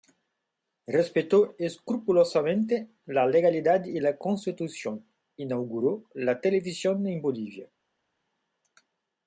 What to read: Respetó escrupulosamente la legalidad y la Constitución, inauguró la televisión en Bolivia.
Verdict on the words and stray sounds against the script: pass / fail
pass